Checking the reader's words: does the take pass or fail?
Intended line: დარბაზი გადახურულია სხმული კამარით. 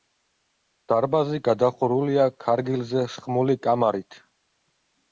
fail